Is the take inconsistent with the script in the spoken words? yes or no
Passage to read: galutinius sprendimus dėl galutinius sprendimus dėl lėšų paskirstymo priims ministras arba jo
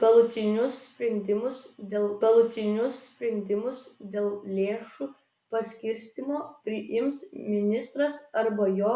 no